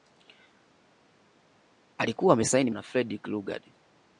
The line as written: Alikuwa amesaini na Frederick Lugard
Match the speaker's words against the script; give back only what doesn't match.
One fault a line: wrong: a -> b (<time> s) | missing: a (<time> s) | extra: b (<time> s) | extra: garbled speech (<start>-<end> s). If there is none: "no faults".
no faults